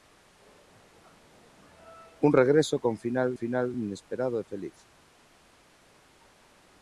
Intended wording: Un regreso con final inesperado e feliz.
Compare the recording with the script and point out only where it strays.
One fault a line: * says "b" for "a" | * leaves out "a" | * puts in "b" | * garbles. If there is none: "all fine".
* puts in "final"